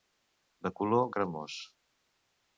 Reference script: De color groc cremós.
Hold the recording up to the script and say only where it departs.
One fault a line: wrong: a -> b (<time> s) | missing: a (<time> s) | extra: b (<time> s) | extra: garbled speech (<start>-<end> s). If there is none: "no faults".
missing: groc (1.1 s)